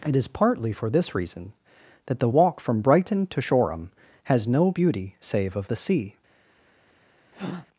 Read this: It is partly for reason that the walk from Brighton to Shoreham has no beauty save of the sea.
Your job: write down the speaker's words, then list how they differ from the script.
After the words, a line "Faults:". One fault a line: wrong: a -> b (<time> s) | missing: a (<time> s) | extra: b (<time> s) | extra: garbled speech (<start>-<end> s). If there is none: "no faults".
It is partly for this reason that the walk from Brighton to Shoreham has no beauty save of the sea.
Faults:
extra: this (0.9 s)